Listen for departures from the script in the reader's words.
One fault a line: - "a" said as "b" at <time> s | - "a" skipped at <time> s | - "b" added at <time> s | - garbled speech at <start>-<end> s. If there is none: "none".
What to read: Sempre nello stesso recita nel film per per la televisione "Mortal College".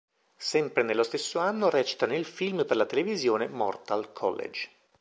- "anno" added at 1.4 s
- "per" skipped at 2.8 s